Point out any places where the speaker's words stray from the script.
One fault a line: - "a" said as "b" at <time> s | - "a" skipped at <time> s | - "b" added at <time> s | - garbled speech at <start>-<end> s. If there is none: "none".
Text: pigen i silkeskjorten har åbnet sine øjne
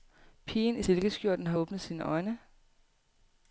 none